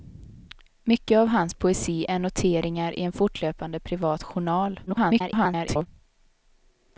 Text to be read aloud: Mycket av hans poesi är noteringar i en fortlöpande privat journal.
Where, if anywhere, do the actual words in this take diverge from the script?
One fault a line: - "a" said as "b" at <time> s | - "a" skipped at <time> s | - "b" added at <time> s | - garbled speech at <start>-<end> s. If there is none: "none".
- garbled speech at 4.9-5.9 s